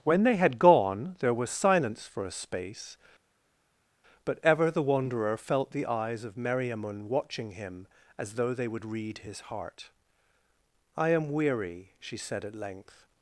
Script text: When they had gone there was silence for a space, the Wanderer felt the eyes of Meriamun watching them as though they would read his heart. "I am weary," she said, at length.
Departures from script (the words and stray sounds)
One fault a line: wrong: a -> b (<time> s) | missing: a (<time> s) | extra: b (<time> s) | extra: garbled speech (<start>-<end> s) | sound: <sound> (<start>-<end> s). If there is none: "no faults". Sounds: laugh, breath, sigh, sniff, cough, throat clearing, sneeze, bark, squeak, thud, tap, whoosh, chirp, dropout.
extra: but ever (4.2 s)
wrong: them -> him (7.5 s)